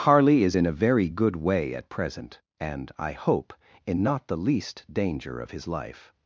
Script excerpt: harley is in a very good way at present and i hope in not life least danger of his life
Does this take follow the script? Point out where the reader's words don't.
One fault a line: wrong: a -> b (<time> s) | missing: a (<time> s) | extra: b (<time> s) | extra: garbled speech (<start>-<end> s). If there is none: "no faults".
wrong: life -> the (4.3 s)